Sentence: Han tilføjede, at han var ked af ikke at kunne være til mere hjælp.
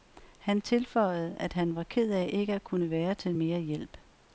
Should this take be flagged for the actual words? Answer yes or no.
no